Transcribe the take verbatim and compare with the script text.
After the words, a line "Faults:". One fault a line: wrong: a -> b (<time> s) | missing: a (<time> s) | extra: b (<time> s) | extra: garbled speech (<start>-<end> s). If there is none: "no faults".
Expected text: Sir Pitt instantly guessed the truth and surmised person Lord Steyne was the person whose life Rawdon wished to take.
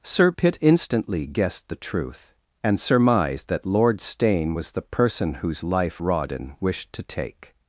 Sir Pitt instantly guessed the truth and surmised that Lord Steyne was the person whose life Rawdon wished to take.
Faults:
wrong: person -> that (3.5 s)